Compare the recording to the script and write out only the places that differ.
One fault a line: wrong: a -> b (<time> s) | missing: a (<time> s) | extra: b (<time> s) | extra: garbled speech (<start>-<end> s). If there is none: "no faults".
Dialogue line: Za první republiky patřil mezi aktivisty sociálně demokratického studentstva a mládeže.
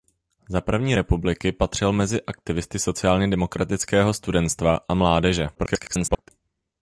extra: garbled speech (5.5-6.3 s)